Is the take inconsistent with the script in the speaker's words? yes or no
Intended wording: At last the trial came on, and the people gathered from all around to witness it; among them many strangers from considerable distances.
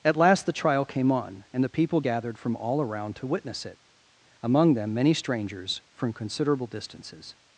no